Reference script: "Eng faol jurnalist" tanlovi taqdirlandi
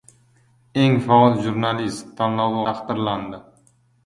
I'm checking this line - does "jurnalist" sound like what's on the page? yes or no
yes